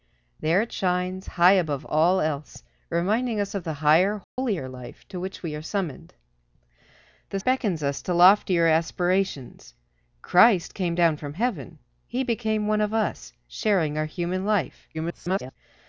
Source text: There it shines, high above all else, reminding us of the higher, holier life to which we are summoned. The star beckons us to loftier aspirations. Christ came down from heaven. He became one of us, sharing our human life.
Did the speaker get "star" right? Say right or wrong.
wrong